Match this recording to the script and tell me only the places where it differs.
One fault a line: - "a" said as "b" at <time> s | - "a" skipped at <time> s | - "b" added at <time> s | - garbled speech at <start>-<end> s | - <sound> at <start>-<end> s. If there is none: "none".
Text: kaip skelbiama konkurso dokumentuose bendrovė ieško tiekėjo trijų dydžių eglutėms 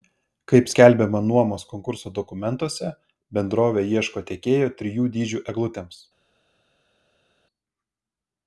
- "nuomos" added at 1.3 s